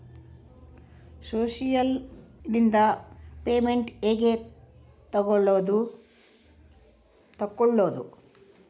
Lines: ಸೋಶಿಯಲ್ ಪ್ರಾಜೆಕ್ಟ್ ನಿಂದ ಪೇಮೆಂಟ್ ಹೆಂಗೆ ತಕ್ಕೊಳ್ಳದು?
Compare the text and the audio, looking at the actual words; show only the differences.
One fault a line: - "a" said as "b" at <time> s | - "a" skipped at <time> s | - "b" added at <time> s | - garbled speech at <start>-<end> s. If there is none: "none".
- "ಪ್ರಾಜೆಕ್ಟ್" skipped at 1.9 s